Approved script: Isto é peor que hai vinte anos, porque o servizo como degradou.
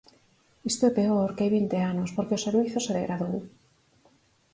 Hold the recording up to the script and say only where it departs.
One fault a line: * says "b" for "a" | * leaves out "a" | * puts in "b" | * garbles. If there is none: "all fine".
* says "se" for "como"